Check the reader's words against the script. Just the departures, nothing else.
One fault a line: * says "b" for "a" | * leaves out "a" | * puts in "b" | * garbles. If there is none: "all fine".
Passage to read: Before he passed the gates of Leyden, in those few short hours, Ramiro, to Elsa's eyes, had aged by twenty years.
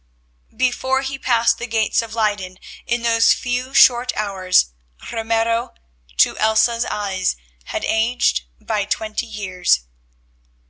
all fine